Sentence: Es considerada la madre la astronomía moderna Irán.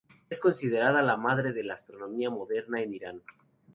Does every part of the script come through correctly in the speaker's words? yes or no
no